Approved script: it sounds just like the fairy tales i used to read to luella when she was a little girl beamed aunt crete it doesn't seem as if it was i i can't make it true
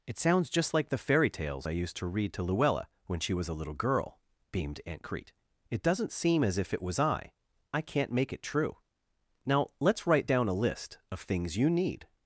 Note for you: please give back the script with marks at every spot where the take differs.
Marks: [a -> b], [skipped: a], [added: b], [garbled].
it sounds just like the fairy tales i used to read to luella when she was a little girl beamed aunt crete it doesn't seem as if it was i i can't make it true [added: now let's write down a list of things you need]